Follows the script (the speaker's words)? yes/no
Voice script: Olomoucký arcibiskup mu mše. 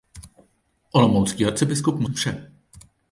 yes